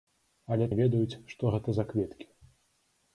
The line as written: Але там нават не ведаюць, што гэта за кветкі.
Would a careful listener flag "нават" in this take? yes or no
yes